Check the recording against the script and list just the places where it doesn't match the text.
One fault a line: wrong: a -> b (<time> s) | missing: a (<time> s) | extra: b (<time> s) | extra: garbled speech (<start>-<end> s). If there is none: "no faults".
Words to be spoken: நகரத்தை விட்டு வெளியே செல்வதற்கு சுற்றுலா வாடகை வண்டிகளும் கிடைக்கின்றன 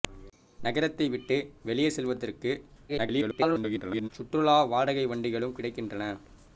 extra: garbled speech (2.9-4.1 s)